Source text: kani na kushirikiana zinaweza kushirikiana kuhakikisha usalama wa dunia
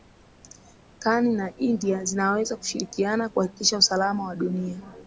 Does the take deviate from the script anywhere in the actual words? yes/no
yes